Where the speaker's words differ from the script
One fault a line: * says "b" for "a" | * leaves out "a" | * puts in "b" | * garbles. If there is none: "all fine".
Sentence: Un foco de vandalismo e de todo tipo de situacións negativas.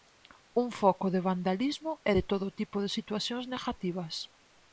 all fine